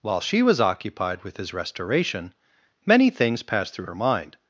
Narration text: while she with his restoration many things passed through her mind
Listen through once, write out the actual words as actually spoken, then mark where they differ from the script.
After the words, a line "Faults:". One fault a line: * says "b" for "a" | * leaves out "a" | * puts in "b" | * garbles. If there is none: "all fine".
while she was occupied with his restoration many things passed through her mind
Faults:
* puts in "was occupied"